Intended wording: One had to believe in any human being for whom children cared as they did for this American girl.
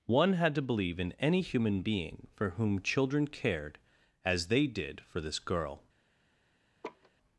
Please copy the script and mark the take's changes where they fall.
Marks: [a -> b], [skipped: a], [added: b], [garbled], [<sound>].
One had to believe in any human being for whom children cared as they did for this [skipped: American] girl. [laugh]